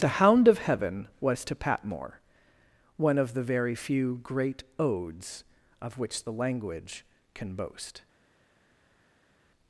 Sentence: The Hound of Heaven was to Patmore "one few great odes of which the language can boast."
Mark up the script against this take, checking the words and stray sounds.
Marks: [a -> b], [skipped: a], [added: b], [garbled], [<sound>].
The Hound of Heaven was to Patmore "one [added: of the very] few great odes of which the language can boast."